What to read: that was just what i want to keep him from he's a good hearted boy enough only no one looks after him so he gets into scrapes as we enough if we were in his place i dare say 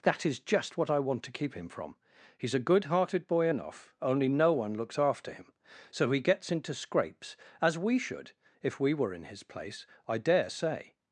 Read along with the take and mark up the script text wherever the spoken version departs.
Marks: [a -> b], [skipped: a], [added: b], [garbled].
that [was -> is] just what i want to keep him from he's a good hearted boy enough only no one looks after him so he gets into scrapes as we [enough -> should] if we were in his place i dare say